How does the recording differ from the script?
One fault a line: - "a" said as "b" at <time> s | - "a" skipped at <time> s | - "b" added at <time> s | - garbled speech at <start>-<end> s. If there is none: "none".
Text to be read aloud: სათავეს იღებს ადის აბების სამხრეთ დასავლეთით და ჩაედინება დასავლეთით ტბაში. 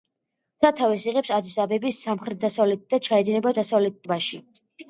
none